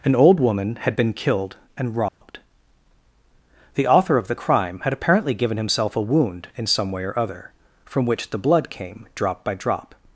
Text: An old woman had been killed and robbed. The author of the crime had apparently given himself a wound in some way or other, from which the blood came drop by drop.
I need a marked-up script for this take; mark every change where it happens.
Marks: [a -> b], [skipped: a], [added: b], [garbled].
An old woman had been killed and robbed. The author of the crime had apparently given himself a wound in some way or other, from which the blood came drop by drop.